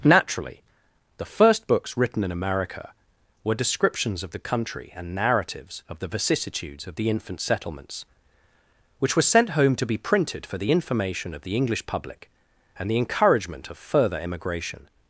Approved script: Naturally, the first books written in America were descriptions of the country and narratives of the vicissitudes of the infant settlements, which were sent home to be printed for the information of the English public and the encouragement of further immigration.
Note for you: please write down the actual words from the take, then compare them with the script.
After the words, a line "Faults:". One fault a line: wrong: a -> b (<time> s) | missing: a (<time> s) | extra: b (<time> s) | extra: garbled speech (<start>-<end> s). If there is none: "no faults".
Naturally, the first books written in America were descriptions of the country and narratives of the vicissitudes of the infant settlements, which were sent home to be printed for the information of the English public and the encouragement of further immigration.
Faults:
no faults